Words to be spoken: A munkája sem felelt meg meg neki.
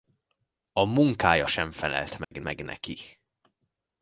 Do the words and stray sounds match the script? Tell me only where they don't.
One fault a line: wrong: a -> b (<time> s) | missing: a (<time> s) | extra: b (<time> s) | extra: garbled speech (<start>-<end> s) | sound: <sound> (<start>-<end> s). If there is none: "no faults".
sound: dropout (2.2-2.3 s)